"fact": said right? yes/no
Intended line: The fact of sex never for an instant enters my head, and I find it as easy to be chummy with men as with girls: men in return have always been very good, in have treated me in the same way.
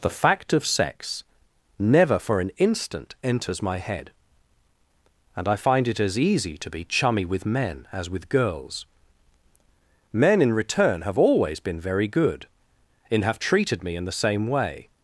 yes